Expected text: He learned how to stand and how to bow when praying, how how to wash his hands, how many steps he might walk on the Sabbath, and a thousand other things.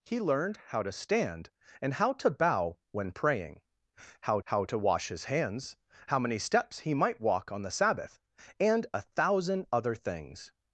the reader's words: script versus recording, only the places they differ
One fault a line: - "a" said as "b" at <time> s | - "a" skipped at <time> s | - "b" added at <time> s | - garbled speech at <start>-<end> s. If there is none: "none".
none